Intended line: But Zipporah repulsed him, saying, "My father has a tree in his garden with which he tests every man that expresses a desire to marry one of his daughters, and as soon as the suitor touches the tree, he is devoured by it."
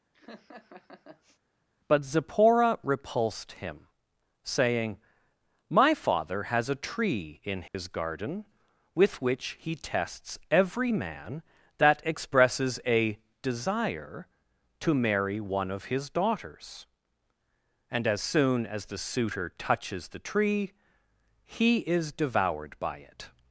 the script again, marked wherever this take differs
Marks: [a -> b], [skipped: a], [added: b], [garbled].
But Zipporah repulsed him, saying, "My father has a tree in his garden with which he tests every man that expresses a desire to marry one of his daughters, and as soon as the suitor touches the tree, he is devoured by it."